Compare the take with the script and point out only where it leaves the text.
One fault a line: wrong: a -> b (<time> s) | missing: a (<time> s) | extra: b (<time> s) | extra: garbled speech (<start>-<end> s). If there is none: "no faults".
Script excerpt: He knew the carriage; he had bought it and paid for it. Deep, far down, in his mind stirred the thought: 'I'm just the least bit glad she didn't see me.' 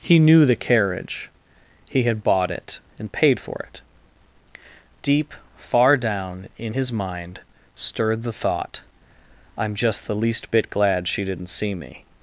no faults